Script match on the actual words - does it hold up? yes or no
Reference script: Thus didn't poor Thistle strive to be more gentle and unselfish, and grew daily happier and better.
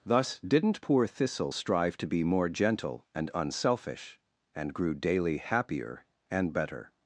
yes